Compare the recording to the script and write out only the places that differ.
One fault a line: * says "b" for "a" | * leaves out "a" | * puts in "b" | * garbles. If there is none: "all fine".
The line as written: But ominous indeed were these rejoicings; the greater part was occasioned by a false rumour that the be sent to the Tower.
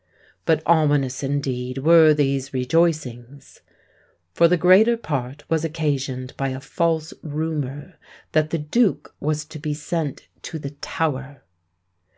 * puts in "for"
* puts in "duke was to"